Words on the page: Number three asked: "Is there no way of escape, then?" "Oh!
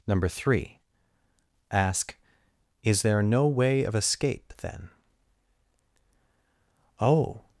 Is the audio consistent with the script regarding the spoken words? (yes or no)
no